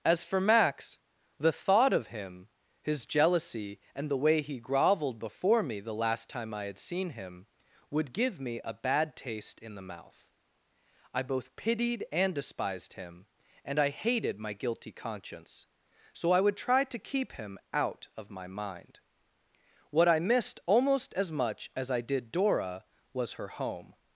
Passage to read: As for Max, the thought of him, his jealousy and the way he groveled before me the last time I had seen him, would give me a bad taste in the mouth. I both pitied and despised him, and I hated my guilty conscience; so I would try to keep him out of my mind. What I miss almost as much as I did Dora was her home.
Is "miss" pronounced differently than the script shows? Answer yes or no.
yes